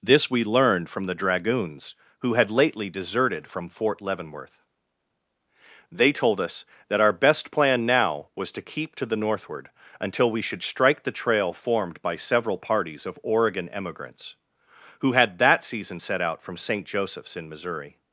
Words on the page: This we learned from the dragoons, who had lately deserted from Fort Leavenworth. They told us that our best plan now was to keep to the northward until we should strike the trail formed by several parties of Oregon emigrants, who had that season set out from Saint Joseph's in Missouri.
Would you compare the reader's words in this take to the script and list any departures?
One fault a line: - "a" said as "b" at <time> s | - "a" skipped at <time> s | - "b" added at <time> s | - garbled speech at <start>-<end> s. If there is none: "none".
none